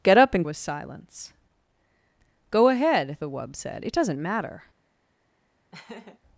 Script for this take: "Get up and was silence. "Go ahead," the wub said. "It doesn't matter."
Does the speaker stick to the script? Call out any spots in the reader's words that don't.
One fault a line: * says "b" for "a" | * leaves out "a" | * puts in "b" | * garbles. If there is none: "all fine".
all fine